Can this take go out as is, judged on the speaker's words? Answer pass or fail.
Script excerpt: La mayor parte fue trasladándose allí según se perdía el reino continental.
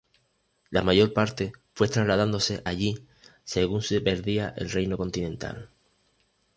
pass